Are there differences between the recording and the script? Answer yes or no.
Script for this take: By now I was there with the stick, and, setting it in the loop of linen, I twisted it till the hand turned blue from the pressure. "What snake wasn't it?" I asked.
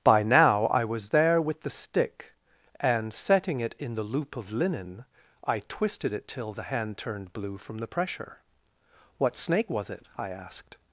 yes